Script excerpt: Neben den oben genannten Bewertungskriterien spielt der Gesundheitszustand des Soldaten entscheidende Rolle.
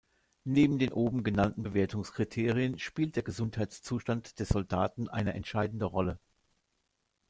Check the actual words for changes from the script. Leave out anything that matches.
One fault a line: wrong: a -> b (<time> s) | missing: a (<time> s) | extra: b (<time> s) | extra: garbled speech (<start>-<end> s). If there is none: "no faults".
extra: eine (5.1 s)